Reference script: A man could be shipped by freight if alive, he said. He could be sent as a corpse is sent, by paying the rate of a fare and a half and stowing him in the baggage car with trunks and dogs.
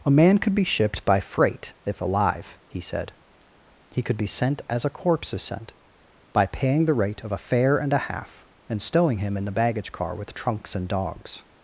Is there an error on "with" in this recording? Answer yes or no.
no